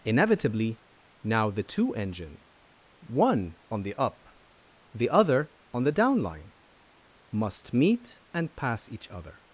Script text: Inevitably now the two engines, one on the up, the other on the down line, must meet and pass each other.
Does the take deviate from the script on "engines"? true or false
true